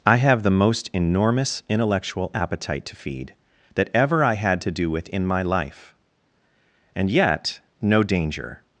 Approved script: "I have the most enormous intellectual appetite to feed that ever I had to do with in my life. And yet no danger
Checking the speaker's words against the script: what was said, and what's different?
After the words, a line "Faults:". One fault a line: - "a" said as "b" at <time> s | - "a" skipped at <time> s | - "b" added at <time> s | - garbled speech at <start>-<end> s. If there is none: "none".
"I have the most enormous intellectual appetite to feed that ever I had to do with in my life. And yet no danger
Faults:
none